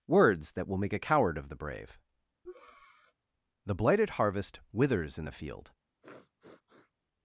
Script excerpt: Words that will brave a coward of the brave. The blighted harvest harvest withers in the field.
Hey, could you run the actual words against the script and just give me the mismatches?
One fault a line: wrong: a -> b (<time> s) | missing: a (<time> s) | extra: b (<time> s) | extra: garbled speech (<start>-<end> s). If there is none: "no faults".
wrong: brave -> make (0.8 s)
missing: harvest (4.6 s)